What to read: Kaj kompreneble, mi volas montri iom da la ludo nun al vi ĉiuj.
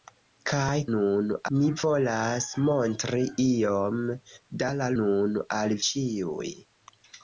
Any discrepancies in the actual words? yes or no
yes